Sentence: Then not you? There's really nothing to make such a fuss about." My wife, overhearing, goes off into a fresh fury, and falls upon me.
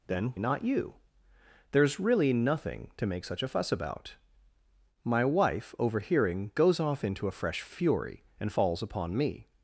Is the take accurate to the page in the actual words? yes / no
yes